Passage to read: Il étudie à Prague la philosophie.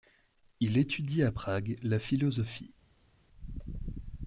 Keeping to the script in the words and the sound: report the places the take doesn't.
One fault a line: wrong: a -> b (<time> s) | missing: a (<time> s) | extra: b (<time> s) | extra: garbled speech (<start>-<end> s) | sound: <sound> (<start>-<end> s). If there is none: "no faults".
no faults